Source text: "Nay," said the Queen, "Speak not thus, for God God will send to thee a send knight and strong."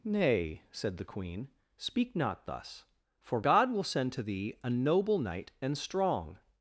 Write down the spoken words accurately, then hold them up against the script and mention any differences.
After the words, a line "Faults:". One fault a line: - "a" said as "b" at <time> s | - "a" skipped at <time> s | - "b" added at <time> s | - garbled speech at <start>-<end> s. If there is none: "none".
"Nay," said the Queen, "Speak not thus, for God will send to thee a noble knight and strong."
Faults:
- "God" skipped at 3.7 s
- "send" said as "noble" at 4.7 s